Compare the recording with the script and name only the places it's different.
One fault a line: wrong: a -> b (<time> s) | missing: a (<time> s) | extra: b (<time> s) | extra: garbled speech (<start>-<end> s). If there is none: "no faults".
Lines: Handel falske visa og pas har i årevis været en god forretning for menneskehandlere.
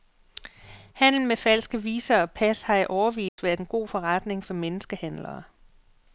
extra: med (1.2 s)